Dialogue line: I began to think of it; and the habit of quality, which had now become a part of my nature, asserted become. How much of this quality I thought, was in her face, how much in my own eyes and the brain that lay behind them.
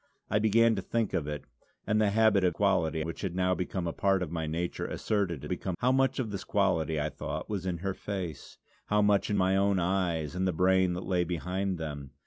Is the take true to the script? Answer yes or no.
yes